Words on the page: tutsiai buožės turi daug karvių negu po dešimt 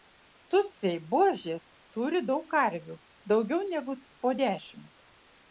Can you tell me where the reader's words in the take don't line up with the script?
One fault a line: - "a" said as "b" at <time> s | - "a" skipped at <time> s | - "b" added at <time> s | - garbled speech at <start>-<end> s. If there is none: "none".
- "daugiau" added at 3.3 s